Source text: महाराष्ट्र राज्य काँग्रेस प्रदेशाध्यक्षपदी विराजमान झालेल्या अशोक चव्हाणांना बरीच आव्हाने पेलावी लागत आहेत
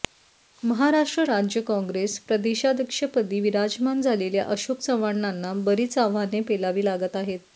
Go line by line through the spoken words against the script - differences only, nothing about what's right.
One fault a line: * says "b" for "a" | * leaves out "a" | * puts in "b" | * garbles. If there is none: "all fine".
all fine